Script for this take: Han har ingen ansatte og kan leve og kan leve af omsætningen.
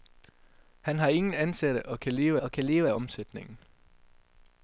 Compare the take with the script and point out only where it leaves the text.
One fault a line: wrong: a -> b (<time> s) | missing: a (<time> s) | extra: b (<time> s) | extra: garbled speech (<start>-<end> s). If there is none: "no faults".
no faults